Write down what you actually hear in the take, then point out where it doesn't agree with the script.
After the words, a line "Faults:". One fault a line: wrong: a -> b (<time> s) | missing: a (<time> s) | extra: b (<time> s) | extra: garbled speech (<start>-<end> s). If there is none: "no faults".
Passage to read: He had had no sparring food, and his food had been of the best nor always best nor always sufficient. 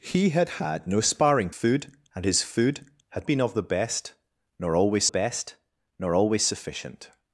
He had had no sparring food, and his food had been of the best nor always best nor always sufficient.
Faults:
no faults